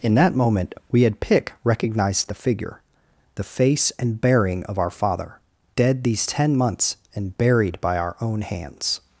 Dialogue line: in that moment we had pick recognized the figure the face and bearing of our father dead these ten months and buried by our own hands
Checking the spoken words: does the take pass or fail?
pass